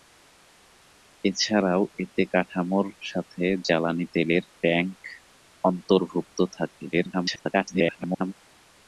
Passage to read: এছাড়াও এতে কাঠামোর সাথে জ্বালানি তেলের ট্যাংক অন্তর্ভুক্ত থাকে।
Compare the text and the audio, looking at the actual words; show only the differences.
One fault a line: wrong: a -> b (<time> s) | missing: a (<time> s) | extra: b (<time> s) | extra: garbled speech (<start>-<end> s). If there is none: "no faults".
extra: garbled speech (6.9-8.3 s)